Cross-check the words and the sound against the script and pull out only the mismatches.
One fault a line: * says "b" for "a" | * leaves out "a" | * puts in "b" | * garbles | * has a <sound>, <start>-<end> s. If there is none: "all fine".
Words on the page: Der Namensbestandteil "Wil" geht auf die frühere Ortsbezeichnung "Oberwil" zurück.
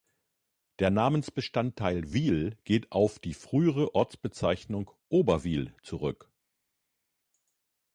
all fine